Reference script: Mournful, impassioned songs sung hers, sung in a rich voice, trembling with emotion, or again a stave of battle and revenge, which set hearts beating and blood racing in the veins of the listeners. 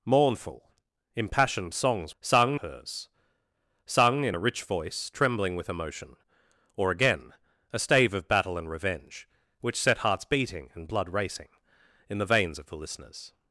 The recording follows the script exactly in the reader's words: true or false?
true